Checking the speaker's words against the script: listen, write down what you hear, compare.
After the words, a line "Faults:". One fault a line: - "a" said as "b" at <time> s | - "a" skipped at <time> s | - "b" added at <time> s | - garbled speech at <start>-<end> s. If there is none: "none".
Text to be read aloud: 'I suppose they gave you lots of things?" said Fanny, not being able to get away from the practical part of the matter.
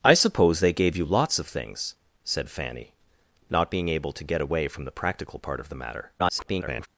'I suppose they gave you lots of things?" said Fanny, not being able to get away from the practical part of the matter. [garbled]
Faults:
- garbled speech at 6.2-6.9 s